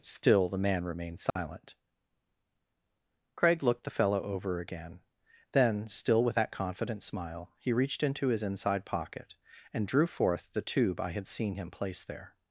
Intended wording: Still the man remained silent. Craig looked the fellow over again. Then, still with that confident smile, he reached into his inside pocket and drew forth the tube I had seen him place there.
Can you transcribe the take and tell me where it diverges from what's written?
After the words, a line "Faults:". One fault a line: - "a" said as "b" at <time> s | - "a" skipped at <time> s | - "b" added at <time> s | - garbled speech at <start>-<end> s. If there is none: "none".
Still the man remained silent. Craig looked the fellow over again. Then, still with that confident smile, he reached into his inside pocket and drew forth the tube I had seen him place there.
Faults:
none